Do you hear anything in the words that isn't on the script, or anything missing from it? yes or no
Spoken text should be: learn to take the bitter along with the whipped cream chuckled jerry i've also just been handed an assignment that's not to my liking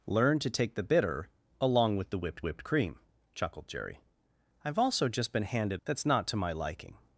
yes